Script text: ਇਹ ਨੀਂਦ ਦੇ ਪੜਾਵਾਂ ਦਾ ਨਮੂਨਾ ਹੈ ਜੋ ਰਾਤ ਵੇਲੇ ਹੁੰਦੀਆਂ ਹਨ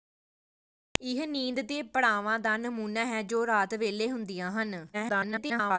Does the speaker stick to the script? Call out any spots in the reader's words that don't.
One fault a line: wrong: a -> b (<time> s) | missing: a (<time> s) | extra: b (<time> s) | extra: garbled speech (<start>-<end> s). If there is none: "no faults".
extra: garbled speech (4.9-5.8 s)